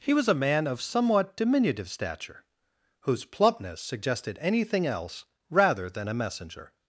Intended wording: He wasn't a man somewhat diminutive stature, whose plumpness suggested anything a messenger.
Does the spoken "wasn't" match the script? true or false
false